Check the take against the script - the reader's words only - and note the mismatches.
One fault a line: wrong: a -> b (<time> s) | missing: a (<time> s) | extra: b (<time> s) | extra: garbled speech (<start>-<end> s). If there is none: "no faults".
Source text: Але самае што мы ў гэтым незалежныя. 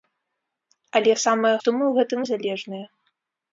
no faults